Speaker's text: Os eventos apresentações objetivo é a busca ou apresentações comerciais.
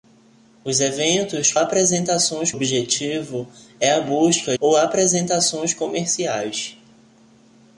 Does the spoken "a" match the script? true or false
true